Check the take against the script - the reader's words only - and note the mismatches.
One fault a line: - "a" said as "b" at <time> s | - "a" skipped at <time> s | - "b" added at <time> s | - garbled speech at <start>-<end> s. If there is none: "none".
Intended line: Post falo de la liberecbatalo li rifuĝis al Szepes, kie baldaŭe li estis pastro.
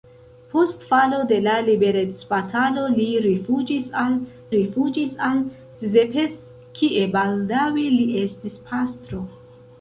- "rifuĝis al" added at 4.6 s